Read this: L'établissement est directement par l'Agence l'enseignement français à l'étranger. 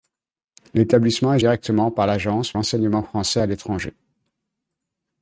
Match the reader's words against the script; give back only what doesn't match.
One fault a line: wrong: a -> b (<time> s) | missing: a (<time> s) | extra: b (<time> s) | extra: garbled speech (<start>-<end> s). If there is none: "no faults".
no faults